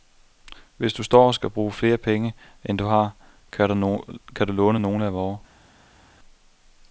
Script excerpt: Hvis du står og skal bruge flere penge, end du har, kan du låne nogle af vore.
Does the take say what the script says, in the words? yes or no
yes